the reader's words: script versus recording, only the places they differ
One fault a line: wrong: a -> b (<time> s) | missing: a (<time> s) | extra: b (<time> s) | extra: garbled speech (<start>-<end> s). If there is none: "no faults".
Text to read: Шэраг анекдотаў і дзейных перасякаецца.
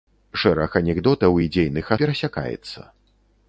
no faults